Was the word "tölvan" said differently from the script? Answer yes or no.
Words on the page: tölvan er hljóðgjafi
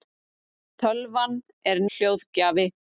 no